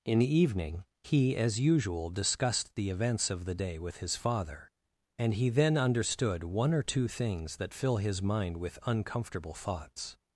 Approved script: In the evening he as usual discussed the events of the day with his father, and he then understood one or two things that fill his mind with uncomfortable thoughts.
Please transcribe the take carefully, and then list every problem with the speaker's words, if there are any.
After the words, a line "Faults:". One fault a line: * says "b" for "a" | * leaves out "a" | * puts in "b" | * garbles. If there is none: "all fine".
In the evening he as usual discussed the events of the day with his father, and he then understood one or two things that fill his mind with uncomfortable thoughts.
Faults:
all fine